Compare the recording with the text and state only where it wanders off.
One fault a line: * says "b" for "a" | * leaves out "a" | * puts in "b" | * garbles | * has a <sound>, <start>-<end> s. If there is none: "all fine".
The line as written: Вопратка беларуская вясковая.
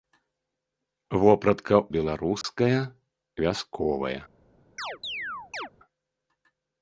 * has a dropout, 2.4-2.4 s
* has a chirp, 4.8-5.7 s